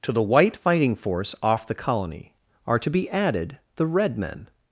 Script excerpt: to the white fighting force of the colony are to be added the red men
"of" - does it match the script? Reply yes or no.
no